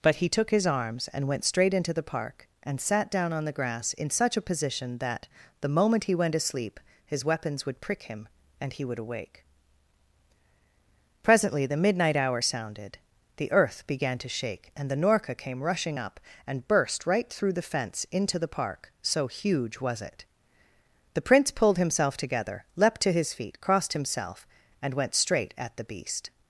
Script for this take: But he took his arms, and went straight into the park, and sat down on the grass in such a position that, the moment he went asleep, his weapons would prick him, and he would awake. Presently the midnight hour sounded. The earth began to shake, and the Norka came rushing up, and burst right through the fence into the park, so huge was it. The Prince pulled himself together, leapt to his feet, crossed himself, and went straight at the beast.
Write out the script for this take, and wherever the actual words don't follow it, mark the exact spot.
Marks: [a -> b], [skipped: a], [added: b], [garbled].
But he took his arms, and went straight into the park, and sat down on the grass in such a position that, the moment he went asleep, his weapons would prick him, and he would awake. Presently the midnight hour sounded. The earth began to shake, and the Norka came rushing up, and burst right through the fence into the park, so huge was it. The Prince pulled himself together, leapt to his feet, crossed himself, and went straight at the beast.